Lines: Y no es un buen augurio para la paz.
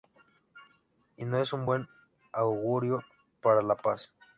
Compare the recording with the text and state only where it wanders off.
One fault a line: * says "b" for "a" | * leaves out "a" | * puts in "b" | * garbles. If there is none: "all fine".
all fine